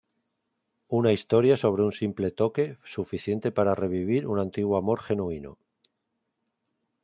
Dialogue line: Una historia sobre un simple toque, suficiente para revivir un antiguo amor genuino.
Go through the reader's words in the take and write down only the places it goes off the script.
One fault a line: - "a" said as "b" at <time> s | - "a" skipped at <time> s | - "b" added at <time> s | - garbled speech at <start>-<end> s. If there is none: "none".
none